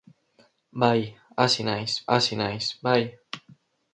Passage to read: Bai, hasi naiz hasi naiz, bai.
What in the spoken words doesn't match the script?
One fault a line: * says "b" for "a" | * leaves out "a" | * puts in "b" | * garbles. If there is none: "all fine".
all fine